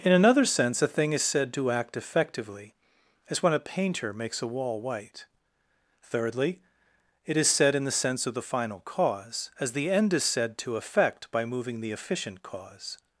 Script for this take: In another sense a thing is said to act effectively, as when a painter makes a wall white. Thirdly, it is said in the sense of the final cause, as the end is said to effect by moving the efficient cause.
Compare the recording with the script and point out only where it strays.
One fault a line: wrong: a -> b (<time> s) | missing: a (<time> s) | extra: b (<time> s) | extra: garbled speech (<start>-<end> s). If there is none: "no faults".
no faults